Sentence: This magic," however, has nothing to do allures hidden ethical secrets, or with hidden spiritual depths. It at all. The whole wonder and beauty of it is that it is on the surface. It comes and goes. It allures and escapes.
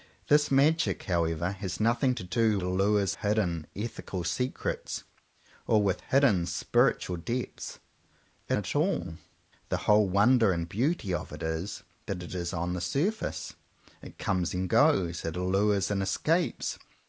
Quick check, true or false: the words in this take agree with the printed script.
true